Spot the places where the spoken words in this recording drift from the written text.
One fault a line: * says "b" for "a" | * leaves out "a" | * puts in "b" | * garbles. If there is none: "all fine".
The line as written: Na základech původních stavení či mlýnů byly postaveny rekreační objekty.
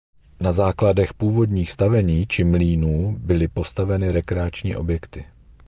all fine